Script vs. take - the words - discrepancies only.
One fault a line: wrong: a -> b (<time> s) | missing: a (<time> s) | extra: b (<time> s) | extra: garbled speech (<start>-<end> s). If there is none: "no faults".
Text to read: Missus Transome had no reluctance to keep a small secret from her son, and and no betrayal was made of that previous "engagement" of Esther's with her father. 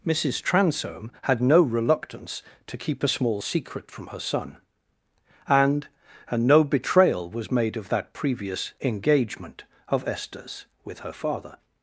no faults